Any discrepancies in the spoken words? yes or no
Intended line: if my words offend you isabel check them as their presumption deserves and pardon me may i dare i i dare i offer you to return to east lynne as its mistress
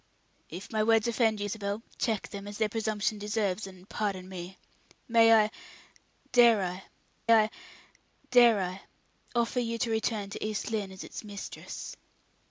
no